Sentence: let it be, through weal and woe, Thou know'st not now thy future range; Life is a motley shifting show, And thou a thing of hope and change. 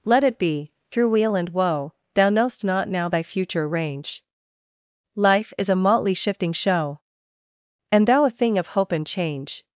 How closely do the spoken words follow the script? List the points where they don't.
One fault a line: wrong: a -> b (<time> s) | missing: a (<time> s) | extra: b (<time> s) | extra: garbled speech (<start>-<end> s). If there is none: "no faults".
no faults